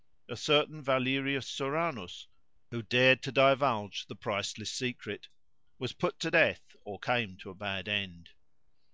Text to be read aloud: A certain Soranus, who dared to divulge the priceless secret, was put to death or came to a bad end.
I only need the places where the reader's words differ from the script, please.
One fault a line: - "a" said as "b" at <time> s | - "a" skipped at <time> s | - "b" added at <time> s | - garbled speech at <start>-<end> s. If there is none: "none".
- "Valerius" added at 0.8 s